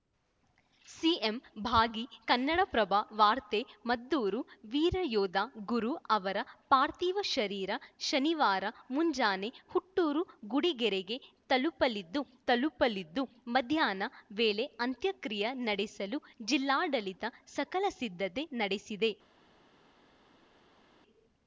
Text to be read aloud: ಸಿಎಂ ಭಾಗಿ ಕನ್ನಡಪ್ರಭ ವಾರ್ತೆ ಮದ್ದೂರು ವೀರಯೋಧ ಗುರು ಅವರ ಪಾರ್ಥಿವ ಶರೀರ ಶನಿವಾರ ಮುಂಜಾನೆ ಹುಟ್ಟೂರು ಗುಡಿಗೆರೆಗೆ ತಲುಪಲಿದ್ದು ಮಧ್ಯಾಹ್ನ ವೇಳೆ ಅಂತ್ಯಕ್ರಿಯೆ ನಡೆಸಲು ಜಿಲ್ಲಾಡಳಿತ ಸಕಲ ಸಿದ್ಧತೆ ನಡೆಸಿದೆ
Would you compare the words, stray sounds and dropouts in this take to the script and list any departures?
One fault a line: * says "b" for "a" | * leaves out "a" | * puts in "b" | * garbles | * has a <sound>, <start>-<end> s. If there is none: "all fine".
* puts in "ತಲುಪಲಿದ್ದು"